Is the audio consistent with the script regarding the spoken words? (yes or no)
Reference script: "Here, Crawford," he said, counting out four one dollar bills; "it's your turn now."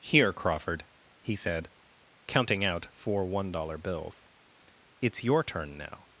yes